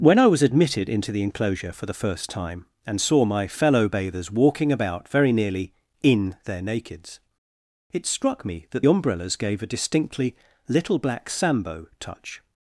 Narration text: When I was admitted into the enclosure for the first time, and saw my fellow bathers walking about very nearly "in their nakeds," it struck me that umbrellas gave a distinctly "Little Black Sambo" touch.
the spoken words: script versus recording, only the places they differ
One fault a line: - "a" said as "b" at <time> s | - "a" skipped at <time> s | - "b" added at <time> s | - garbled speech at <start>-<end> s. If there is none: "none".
none